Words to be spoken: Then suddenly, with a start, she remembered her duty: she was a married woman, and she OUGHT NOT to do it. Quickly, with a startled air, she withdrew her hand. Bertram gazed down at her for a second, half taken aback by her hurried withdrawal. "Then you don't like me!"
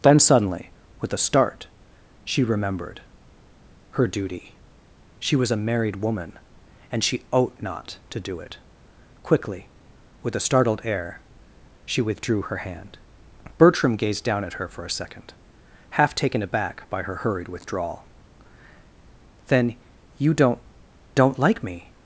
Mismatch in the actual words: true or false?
true